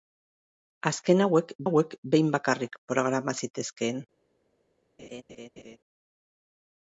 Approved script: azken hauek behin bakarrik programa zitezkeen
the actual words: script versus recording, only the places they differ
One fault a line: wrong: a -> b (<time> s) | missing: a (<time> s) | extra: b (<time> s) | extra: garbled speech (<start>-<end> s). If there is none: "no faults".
extra: hauek (1.7 s)